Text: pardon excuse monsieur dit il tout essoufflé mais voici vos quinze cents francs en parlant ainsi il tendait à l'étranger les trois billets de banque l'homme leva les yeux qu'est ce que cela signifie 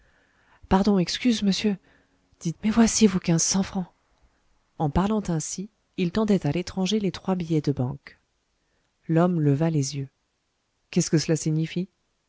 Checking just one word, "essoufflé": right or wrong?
wrong